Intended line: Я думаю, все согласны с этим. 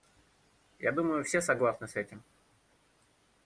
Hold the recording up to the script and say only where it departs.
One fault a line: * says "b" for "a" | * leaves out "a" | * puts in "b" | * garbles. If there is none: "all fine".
all fine